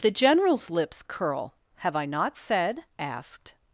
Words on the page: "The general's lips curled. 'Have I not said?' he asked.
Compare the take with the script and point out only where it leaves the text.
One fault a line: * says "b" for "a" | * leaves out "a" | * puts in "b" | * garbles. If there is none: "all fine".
* says "curl" for "curled"
* leaves out "he"